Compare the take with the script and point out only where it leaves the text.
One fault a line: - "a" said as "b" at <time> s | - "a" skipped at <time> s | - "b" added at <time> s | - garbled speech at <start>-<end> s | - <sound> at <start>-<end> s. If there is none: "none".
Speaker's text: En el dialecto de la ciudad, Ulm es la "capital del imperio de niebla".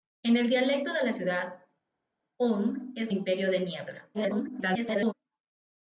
- "la capital del" skipped at 3.1 s
- garbled speech at 4.1-5.1 s